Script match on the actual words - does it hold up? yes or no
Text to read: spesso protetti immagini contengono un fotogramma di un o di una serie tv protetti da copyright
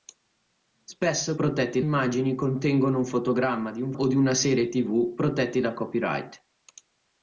yes